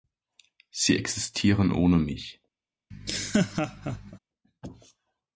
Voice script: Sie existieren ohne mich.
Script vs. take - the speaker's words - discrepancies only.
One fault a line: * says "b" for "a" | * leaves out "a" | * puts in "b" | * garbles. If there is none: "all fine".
all fine